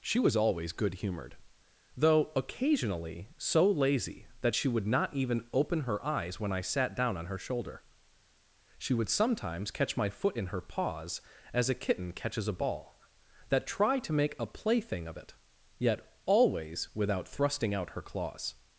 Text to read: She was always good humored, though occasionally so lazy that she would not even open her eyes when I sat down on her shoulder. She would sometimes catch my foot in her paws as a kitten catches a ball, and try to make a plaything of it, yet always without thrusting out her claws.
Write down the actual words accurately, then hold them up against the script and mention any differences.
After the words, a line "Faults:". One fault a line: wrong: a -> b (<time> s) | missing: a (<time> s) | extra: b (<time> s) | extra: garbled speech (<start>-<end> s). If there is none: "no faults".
She was always good humored, though occasionally so lazy that she would not even open her eyes when I sat down on her shoulder. She would sometimes catch my foot in her paws as a kitten catches a ball, that try to make a plaything of it, yet always without thrusting out her claws.
Faults:
wrong: and -> that (13.5 s)